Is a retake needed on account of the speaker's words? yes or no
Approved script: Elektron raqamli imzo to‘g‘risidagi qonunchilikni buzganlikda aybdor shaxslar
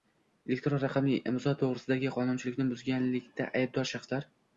no